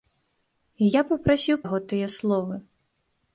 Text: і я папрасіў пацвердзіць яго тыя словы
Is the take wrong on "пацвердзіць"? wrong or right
wrong